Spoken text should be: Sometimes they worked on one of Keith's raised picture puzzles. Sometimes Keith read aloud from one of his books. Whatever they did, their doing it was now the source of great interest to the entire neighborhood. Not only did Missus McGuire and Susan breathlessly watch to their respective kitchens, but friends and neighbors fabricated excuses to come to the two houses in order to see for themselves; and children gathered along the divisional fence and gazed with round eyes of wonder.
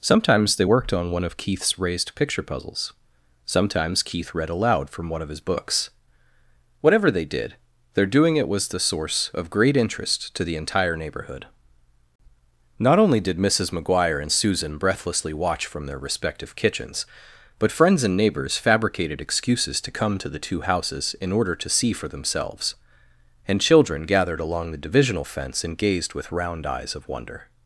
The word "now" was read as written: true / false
false